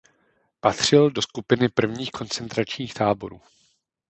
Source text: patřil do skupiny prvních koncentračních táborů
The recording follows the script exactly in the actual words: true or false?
true